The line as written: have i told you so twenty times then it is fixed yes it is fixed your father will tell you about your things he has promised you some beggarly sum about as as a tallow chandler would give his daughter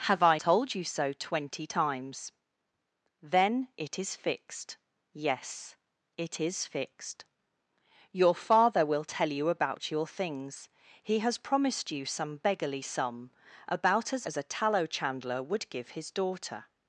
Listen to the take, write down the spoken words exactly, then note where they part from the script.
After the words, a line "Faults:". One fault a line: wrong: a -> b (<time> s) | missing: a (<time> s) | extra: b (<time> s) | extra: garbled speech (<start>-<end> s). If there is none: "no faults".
have i told you so twenty times then it is fixed yes it is fixed your father will tell you about your things he has promised you some beggarly sum about as as a tallow chandler would give his daughter
Faults:
no faults